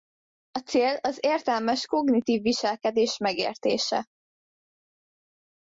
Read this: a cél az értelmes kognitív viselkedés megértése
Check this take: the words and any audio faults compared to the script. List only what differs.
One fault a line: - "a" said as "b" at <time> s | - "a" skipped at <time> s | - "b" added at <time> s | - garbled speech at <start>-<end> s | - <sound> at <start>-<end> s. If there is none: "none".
none